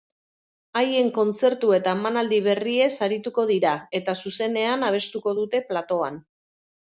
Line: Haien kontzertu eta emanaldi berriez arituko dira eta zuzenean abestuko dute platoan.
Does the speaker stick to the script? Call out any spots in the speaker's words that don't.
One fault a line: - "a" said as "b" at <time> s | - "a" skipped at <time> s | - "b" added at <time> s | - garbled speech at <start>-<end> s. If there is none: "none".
none